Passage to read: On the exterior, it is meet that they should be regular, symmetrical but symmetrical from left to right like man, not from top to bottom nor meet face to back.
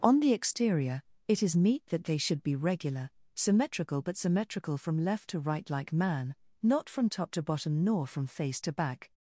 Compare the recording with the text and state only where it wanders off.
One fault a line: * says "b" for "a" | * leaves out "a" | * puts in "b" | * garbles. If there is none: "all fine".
* says "from" for "meet"